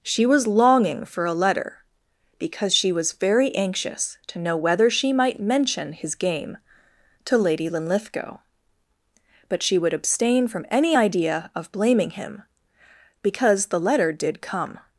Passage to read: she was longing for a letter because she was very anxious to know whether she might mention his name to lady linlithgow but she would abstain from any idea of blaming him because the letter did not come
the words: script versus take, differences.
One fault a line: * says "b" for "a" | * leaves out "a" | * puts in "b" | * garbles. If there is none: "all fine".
* says "game" for "name"
* leaves out "not"